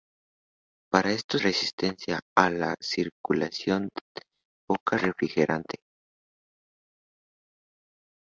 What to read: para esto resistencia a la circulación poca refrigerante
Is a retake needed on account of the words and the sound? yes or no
no